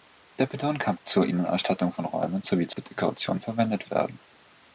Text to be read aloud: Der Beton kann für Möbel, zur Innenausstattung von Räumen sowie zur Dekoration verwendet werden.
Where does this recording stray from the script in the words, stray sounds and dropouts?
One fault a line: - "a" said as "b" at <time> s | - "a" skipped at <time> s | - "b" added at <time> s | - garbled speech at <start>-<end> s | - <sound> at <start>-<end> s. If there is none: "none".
- "für Möbel" skipped at 1.0 s
- dropout at 2.7-2.8 s